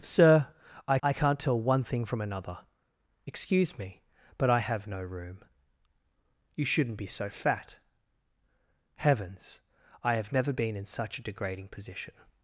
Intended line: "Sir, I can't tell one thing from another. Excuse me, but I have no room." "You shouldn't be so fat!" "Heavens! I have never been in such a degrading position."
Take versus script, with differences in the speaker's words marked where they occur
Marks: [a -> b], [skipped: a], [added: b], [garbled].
"Sir, I [added: I] can't tell one thing from another. Excuse me, but I have no room." "You shouldn't be so fat!" "Heavens! I have never been in such a degrading position."